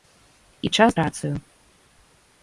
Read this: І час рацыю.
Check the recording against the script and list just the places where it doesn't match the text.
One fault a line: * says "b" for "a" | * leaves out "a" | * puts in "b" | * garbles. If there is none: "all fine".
all fine